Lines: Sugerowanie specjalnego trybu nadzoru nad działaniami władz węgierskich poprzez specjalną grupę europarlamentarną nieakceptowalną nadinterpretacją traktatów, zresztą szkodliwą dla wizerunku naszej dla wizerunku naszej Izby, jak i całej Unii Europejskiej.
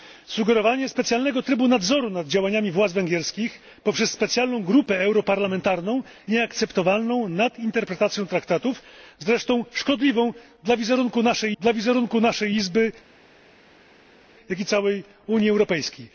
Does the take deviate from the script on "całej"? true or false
false